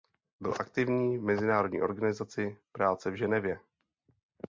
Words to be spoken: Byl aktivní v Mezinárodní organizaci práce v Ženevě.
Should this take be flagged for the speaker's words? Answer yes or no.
no